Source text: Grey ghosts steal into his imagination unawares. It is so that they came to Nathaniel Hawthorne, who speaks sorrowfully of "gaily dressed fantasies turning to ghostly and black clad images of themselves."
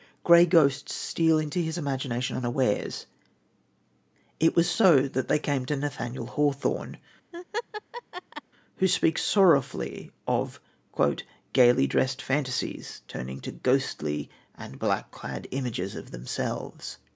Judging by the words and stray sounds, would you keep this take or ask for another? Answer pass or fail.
fail